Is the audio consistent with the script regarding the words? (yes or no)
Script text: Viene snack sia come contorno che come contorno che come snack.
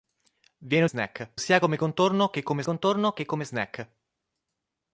yes